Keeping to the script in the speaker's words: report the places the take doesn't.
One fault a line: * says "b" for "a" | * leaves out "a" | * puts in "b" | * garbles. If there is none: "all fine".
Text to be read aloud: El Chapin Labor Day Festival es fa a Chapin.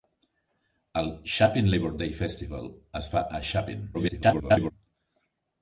* garbles